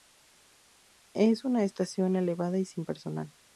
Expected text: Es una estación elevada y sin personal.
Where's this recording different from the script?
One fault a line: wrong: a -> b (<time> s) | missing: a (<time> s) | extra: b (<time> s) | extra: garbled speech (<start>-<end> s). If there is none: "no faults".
no faults